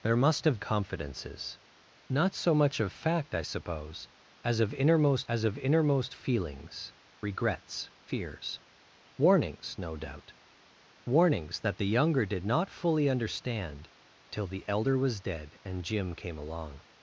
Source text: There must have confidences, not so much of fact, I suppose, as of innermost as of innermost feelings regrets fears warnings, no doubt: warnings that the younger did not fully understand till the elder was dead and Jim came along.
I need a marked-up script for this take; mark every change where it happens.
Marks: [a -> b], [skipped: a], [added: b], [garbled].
There must have confidences, not so much of fact, I suppose, as of innermost as of innermost feelings regrets fears warnings, no doubt: warnings that the younger did not fully understand till the elder was dead and Jim came along.